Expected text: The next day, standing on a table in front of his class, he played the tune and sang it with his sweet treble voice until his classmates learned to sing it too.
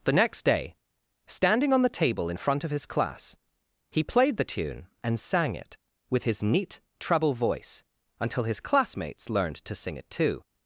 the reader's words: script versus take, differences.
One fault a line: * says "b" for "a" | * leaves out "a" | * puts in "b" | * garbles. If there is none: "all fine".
* says "the" for "a"
* says "neat" for "sweet"